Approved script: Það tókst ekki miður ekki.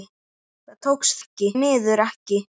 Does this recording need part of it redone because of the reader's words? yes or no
no